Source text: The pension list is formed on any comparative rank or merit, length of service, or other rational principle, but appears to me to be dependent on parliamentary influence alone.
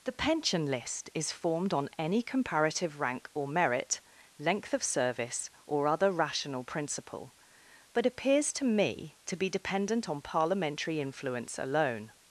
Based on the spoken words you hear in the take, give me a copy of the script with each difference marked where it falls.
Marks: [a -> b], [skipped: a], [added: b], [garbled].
The pension list is formed on any comparative rank or merit, length of service, or other rational principle, but appears to me to be dependent on parliamentary influence alone.